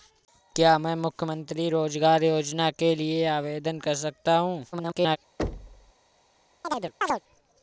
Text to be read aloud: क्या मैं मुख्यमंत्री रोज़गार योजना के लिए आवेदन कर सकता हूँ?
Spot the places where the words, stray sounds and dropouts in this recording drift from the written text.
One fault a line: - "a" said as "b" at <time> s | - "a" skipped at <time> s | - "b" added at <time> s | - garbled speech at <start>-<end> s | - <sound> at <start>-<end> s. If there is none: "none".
- garbled speech at 4.7-5.2 s
- thud at 5.4-5.9 s
- chirp at 6.6-7.2 s